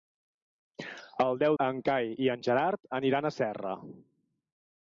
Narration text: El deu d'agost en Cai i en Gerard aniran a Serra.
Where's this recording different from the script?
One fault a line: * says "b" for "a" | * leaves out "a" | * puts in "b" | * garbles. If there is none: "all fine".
* leaves out "d'agost"